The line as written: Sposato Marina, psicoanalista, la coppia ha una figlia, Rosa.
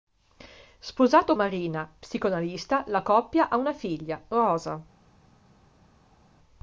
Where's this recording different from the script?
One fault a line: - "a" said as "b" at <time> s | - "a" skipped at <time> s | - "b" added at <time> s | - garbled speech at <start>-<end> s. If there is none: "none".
none